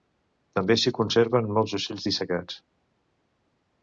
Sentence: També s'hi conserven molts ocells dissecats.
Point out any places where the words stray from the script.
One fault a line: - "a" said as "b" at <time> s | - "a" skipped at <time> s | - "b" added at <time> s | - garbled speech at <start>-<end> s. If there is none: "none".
none